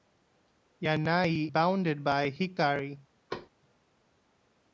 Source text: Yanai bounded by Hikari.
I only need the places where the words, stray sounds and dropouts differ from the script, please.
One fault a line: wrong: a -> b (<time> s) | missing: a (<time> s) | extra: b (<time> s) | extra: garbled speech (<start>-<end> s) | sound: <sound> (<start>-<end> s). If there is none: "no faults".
sound: thud (3.3-3.5 s)